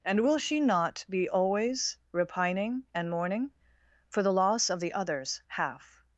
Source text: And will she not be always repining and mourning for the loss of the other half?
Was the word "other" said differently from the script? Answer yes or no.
yes